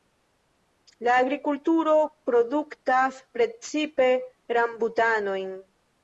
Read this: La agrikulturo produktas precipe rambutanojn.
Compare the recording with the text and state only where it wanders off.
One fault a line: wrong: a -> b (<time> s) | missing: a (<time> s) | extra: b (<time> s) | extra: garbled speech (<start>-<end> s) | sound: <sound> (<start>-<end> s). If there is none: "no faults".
no faults